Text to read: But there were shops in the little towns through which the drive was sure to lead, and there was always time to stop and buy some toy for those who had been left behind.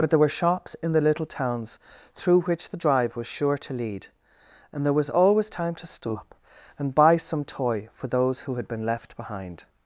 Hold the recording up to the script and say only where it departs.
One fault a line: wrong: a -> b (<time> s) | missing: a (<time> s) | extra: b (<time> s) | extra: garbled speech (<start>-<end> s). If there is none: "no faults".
no faults